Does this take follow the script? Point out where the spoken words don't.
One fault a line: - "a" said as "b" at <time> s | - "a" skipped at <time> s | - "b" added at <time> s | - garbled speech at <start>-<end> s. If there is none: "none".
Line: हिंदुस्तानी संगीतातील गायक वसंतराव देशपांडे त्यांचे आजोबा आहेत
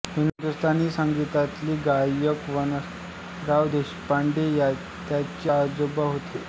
- "आहेत" said as "होते" at 6.0 s